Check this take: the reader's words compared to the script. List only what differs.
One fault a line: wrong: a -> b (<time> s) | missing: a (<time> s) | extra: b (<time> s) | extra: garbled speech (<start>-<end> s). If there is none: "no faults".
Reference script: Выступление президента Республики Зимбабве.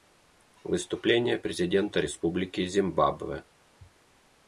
no faults